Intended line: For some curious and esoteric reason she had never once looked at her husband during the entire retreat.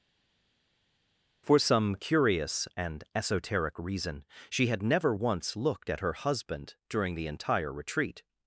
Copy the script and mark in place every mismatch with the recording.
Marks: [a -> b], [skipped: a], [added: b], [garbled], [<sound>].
For some curious and esoteric reason she had never once looked at her husband during the entire retreat.